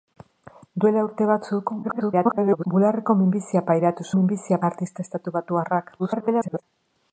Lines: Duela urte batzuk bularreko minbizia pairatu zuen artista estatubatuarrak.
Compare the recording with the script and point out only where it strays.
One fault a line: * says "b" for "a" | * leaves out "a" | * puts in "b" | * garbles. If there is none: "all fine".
* garbles
* says "minbizia" for "zuen"
* garbles